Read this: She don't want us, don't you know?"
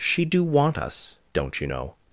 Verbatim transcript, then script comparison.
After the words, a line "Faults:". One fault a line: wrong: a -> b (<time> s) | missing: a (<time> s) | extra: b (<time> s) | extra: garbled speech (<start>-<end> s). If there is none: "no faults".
She do want us, don't you know?"
Faults:
wrong: don't -> do (0.2 s)